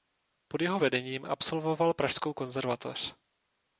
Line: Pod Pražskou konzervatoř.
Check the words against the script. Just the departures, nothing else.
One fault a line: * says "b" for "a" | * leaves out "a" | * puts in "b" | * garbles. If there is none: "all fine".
* puts in "jeho vedením absolvoval"